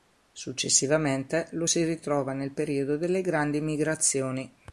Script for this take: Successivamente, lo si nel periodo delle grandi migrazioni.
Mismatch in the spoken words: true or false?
true